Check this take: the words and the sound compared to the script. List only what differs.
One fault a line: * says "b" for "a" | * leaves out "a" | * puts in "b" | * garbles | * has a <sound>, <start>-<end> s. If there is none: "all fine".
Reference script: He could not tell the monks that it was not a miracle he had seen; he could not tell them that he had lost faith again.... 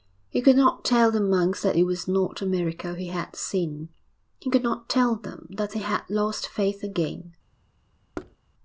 * has a thud, 8.1-8.4 s